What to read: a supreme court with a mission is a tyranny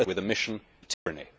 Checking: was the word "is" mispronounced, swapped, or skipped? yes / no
yes